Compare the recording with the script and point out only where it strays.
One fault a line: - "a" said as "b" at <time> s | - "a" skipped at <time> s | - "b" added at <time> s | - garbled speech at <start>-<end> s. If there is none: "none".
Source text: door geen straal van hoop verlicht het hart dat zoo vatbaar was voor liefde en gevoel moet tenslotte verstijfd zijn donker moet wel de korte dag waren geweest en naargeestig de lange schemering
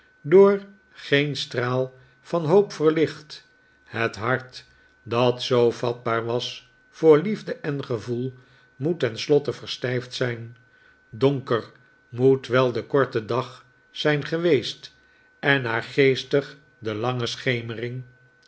- "waren" said as "zijn" at 13.9 s